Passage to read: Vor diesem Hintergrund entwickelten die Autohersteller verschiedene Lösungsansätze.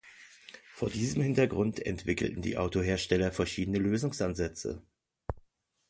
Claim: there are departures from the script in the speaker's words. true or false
false